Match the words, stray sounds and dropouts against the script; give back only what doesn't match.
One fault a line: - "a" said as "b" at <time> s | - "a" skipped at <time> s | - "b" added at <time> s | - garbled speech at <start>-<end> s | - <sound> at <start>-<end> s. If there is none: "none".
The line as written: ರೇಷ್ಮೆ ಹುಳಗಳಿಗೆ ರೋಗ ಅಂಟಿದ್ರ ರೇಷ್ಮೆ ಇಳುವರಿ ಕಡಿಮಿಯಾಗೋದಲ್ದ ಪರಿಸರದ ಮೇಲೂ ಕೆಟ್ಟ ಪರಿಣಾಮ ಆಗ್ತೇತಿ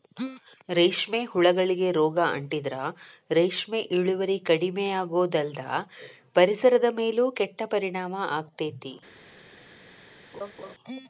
- laugh at 10.3-10.7 s